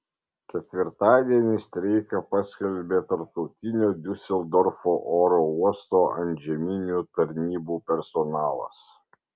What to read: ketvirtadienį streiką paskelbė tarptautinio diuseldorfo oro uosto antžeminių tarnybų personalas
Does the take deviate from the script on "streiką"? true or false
false